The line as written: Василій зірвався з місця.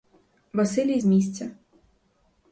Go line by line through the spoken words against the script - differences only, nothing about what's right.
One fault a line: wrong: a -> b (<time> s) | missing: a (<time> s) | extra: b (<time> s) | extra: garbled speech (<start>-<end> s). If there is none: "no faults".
missing: зірвався (1.0 s)